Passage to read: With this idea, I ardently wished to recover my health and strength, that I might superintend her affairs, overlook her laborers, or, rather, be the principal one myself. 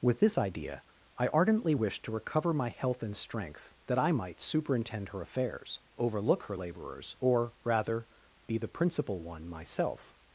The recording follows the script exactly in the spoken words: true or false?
true